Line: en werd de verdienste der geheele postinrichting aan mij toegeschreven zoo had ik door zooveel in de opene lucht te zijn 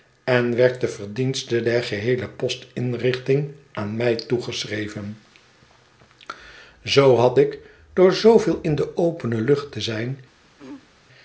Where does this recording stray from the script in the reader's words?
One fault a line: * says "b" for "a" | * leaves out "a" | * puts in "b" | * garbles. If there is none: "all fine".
all fine